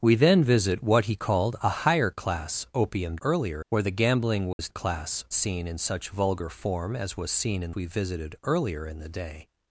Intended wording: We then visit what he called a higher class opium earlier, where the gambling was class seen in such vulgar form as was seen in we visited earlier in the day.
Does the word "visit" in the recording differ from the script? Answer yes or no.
no